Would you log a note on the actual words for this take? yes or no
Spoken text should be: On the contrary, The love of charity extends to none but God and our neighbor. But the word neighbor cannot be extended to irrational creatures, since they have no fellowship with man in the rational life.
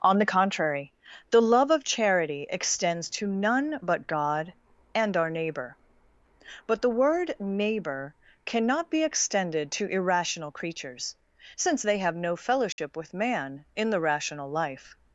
no